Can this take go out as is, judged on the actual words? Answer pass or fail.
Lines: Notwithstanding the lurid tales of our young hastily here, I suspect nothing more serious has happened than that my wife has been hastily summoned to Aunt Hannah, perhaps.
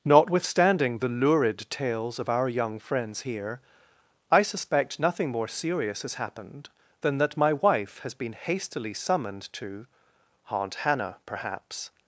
fail